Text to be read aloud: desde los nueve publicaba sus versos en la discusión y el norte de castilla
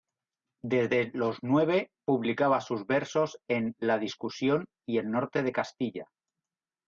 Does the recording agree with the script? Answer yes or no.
yes